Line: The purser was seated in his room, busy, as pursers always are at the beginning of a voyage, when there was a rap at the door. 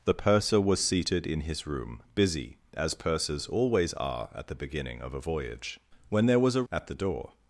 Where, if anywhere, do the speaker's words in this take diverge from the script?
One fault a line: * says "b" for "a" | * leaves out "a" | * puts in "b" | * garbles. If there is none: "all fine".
* leaves out "rap"